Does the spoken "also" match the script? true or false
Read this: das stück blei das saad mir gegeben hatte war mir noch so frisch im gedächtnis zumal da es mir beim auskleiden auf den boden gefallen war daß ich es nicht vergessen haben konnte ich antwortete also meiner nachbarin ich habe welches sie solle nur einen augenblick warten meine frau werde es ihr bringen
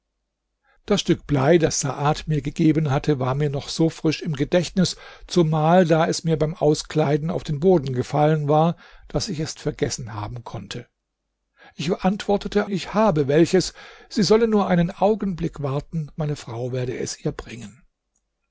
false